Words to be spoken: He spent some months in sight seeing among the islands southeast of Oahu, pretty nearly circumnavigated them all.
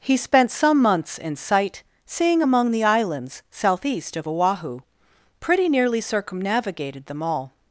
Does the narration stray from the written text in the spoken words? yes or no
no